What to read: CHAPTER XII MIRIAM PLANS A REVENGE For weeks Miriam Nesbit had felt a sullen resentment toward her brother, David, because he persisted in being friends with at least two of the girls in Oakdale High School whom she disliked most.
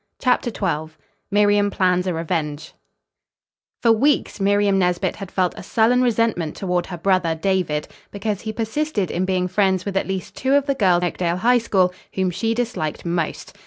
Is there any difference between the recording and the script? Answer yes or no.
yes